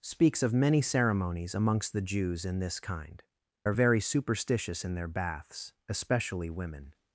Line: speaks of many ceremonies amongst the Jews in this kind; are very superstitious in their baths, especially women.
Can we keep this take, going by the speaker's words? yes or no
yes